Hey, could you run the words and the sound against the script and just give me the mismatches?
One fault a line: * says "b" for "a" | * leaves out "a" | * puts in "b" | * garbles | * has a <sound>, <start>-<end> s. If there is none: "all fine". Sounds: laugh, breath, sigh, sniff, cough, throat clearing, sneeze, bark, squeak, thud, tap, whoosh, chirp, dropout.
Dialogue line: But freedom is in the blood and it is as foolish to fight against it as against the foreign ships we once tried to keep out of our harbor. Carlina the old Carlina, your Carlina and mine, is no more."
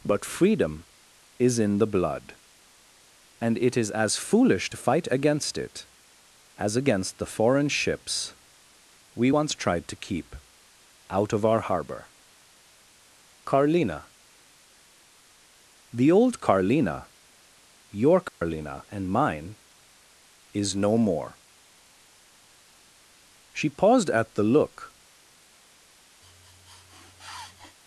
* has a dropout, 18.3-18.4 s
* puts in "She paused at the look"
* has a sniff, 26.2-27.8 s